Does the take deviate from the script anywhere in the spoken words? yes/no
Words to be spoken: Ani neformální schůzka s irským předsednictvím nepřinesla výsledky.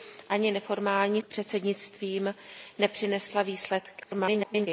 yes